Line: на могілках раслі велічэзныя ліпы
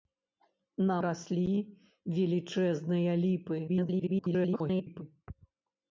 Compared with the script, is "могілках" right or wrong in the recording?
wrong